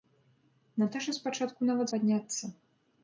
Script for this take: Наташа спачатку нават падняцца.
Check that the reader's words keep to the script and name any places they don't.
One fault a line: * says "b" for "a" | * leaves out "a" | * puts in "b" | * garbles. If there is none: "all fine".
all fine